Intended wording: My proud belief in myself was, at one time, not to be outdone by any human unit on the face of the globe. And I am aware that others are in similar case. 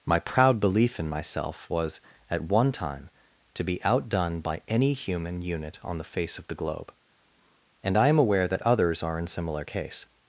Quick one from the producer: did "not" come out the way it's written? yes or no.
no